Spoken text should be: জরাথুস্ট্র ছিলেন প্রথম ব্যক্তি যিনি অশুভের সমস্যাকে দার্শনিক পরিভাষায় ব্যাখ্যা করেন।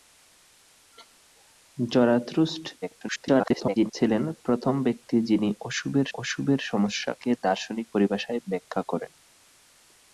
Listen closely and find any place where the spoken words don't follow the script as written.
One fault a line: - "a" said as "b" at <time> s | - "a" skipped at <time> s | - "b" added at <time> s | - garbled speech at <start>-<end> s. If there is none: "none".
- garbled speech at 2.8-3.9 s
- "অশুভের" added at 6.1 s